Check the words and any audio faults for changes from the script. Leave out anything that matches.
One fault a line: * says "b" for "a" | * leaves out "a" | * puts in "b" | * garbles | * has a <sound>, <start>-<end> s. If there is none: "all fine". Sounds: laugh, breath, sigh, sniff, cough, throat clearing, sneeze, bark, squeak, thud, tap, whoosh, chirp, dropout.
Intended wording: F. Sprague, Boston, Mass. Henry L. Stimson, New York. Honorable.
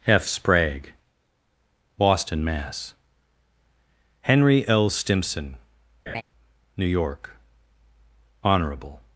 * has a laugh, 6.1-6.2 s